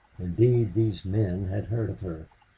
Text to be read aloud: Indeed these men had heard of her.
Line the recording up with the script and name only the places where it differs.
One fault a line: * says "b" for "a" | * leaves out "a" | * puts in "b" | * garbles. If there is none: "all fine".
all fine